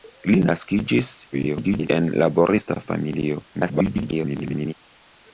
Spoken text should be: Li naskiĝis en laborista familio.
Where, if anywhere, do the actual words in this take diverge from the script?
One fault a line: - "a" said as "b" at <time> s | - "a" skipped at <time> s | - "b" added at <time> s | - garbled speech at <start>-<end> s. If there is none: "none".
- garbled speech at 1.3-1.9 s
- garbled speech at 3.5-4.7 s